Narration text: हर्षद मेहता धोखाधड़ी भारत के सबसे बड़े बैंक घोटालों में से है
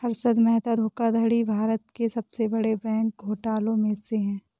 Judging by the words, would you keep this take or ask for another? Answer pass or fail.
pass